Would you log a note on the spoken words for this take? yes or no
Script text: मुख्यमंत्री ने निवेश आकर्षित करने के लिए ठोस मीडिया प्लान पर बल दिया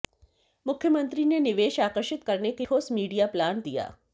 yes